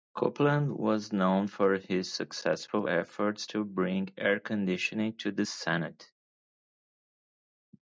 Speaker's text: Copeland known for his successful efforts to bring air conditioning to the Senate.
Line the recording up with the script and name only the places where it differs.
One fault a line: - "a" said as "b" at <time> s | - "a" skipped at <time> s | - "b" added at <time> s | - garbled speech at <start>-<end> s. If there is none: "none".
- "was" added at 0.8 s